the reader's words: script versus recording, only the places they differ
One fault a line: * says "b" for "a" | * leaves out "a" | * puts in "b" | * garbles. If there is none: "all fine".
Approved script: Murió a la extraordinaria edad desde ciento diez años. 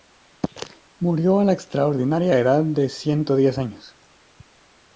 * says "de" for "desde"